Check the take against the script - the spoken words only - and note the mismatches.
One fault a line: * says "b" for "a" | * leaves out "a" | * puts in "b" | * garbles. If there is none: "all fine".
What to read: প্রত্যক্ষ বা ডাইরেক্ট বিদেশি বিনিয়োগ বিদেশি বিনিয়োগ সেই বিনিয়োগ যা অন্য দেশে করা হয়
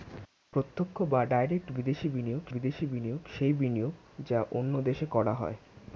all fine